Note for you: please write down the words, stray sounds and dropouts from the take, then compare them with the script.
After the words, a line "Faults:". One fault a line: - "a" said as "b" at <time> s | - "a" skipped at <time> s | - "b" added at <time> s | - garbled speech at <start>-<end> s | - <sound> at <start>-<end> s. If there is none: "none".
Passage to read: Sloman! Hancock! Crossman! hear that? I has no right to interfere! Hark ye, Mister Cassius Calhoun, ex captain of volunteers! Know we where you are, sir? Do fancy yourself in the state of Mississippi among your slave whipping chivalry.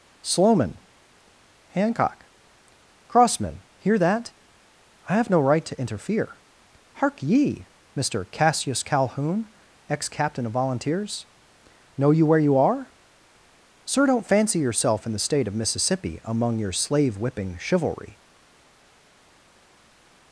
Sloman! Hancock! Crossman! hear that? I have no right to interfere! Hark ye, Mister Cassius Calhoun, ex captain of volunteers! Know you where you are, sir? Don't fancy yourself in the state of Mississippi among your slave whipping chivalry.
Faults:
- "has" said as "have" at 5.2 s
- "we" said as "you" at 12.1 s
- "Do" said as "Don't" at 14.1 s